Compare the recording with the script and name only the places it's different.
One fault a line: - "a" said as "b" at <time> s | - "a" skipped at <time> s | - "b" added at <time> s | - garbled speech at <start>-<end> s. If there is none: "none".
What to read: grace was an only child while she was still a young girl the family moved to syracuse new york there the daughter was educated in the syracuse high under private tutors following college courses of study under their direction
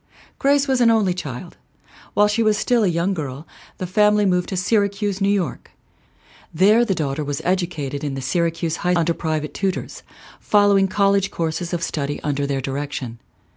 none